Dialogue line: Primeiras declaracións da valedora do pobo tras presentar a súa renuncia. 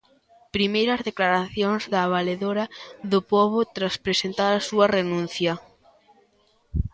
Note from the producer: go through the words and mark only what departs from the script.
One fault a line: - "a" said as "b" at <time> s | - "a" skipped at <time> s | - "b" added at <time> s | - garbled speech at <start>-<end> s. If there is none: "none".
none